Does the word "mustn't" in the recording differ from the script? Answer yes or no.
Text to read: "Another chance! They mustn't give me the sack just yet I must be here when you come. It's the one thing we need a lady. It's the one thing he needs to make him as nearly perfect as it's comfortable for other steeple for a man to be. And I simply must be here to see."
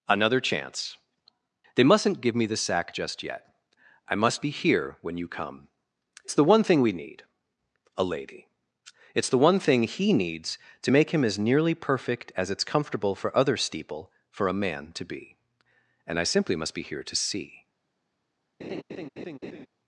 no